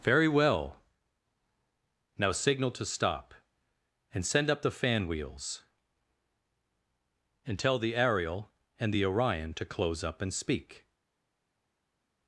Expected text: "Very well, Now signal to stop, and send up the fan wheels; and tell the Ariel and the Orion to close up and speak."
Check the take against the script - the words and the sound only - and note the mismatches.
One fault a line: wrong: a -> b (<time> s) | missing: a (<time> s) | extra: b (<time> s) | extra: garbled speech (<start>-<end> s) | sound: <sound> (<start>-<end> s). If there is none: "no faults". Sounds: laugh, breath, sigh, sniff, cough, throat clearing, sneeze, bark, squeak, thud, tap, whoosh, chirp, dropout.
no faults